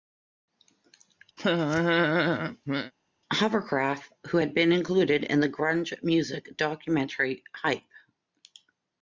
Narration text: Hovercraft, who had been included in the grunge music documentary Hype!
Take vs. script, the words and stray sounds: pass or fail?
fail